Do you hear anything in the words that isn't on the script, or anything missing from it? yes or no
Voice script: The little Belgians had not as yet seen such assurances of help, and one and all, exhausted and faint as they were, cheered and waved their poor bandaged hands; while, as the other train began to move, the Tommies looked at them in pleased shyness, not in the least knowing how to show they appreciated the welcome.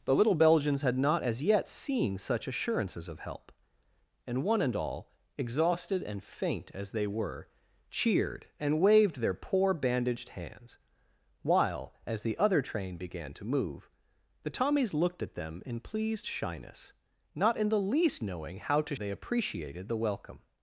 yes